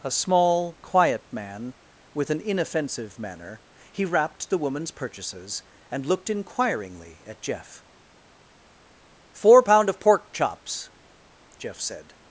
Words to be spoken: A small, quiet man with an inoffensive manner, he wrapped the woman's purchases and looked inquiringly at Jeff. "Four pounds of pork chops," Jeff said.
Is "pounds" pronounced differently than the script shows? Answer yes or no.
yes